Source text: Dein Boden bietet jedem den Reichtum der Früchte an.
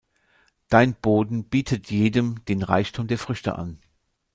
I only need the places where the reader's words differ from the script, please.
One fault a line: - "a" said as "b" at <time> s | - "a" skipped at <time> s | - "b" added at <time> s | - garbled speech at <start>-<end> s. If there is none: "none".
none